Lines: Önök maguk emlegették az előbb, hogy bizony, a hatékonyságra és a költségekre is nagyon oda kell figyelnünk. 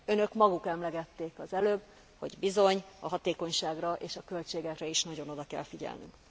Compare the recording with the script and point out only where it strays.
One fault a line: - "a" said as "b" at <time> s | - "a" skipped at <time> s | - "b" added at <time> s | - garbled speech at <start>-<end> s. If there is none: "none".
none